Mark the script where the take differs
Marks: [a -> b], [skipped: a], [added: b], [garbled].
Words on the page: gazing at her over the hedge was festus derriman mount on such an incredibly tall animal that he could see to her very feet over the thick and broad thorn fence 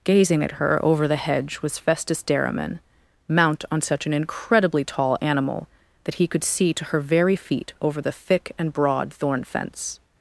gazing at her over the hedge was festus derriman mount on such an incredibly tall animal that he could see to her very feet over the thick and broad thorn fence